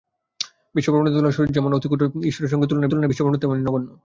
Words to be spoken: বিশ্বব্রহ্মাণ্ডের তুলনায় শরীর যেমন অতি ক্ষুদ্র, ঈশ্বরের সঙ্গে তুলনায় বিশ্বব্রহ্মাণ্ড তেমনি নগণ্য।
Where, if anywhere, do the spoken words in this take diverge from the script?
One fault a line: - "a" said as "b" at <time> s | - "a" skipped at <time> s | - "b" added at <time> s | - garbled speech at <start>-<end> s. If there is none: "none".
- "তুলনায়" added at 2.9 s